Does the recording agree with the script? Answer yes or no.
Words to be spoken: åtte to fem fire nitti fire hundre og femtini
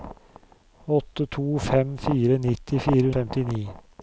no